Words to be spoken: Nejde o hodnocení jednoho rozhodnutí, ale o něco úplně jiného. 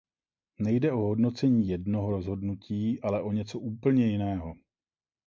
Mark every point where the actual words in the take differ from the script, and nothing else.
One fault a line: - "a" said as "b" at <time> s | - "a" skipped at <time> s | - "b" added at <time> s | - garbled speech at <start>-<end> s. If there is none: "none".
none